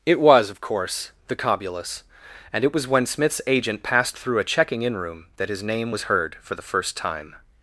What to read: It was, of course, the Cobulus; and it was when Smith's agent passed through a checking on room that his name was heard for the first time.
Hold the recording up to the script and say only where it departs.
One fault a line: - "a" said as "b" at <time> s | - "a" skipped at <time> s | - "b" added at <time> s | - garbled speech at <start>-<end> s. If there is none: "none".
- "on" said as "in" at 4.8 s